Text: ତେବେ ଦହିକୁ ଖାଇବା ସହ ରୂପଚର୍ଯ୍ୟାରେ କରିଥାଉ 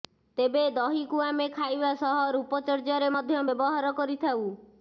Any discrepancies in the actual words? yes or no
yes